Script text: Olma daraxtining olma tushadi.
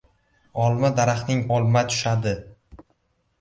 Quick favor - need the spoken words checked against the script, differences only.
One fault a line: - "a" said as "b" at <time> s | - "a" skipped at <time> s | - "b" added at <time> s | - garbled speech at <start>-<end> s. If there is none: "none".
none